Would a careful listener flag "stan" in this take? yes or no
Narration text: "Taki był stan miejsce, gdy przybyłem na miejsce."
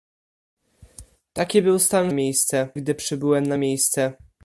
no